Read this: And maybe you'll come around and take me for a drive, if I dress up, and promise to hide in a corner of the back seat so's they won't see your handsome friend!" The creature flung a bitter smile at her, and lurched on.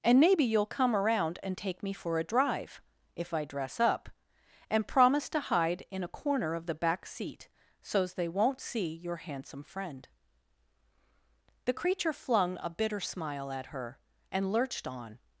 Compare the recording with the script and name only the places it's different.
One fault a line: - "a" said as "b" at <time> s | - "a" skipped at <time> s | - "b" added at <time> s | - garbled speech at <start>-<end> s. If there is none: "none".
none